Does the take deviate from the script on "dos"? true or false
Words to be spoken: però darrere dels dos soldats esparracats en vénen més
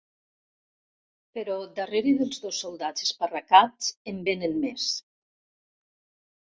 false